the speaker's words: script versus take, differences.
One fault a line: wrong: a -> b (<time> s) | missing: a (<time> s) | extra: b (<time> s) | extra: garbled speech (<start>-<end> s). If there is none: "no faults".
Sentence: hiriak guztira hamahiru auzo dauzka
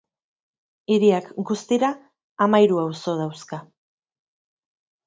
no faults